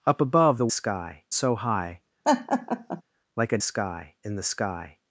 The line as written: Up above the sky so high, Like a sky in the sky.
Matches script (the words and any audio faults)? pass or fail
fail